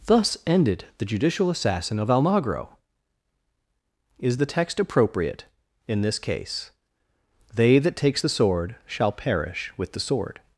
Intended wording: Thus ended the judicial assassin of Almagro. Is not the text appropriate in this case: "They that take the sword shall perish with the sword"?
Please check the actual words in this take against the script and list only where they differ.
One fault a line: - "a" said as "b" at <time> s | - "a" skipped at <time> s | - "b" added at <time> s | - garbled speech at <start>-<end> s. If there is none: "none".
- "not" skipped at 4.4 s
- "take" said as "takes" at 8.0 s